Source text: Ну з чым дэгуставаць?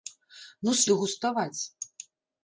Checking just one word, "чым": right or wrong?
wrong